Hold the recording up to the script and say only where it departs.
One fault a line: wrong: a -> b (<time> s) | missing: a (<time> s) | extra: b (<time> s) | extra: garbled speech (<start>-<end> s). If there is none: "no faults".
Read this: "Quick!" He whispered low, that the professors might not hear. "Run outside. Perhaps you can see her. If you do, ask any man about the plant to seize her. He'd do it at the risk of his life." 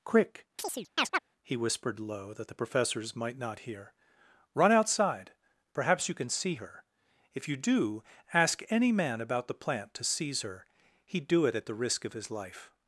no faults